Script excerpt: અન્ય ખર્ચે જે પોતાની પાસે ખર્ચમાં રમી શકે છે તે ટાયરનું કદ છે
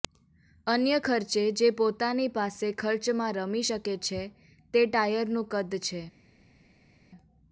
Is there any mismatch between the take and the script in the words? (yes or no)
no